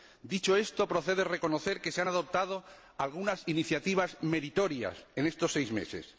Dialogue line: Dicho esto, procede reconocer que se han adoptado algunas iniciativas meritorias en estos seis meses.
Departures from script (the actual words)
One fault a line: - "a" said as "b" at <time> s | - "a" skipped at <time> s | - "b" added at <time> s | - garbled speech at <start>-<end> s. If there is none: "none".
none